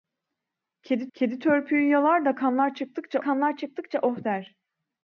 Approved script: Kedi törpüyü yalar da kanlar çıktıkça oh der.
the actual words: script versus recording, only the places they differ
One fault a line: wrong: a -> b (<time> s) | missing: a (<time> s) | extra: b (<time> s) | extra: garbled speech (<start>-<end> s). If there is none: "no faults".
extra: kedi (1.1 s)
extra: kanlar çıktıkça (3.2 s)